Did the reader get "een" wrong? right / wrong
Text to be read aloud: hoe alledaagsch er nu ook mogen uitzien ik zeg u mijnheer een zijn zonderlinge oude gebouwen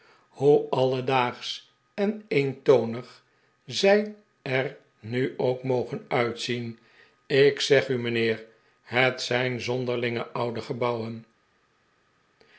wrong